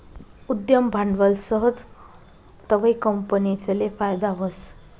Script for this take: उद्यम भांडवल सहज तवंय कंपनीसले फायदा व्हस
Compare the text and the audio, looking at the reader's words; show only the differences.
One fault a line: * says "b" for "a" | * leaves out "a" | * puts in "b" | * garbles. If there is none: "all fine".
all fine